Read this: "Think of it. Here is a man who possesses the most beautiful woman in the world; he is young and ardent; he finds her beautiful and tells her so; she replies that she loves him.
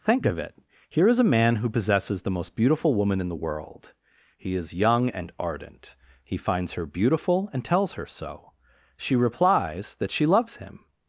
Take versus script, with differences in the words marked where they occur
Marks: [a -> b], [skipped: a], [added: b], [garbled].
"Think of it. Here is a man who possesses the most beautiful woman in the world; he is young and ardent; he finds her beautiful and tells her so; she replies that she loves him.